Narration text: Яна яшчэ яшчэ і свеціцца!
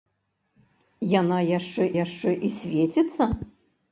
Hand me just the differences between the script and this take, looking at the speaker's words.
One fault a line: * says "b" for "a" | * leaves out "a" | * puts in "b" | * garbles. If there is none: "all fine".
all fine